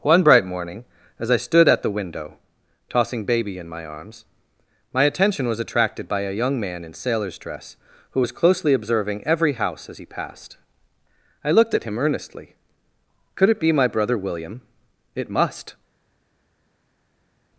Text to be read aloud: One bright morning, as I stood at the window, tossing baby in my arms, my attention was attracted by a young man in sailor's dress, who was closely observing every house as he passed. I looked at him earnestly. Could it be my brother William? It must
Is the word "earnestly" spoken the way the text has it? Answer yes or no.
yes